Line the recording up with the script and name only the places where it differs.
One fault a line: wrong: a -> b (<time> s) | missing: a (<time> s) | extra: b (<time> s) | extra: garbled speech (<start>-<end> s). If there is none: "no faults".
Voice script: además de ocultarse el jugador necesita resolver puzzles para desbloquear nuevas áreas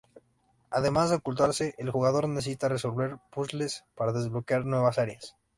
no faults